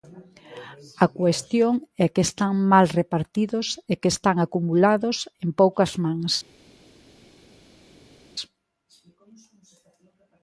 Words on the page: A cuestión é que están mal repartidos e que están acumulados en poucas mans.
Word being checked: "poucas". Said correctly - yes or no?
yes